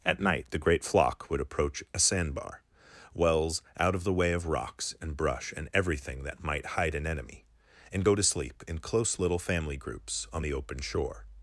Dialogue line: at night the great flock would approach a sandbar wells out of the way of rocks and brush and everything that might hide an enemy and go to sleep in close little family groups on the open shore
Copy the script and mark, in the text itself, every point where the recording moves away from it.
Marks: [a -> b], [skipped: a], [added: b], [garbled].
at night the great flock would approach a sandbar wells out of the way of rocks and brush and everything that might hide an enemy and go to sleep in close little family groups on the open shore